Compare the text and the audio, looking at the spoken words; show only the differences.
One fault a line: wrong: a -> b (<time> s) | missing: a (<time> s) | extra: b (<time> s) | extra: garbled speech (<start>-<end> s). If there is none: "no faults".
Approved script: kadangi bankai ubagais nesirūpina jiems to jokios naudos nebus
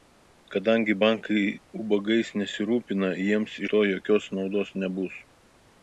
no faults